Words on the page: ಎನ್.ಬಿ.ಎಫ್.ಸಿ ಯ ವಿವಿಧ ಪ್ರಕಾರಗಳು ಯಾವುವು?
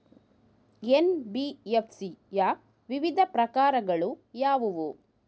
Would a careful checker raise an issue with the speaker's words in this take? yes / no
no